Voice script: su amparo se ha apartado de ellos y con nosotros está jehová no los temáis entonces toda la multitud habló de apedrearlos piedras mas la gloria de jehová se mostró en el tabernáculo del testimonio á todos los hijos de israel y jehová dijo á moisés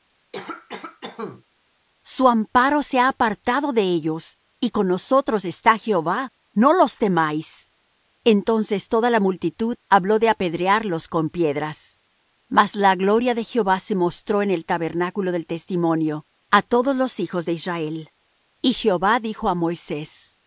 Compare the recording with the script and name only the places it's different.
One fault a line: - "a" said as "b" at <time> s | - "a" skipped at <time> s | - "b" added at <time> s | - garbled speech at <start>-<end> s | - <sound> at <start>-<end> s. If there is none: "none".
- cough at 0.3-1.4 s
- "con" added at 11.1 s